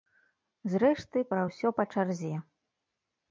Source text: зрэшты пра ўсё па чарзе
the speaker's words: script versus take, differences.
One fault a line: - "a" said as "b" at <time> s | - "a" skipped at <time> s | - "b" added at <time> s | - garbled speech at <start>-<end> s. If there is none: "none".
none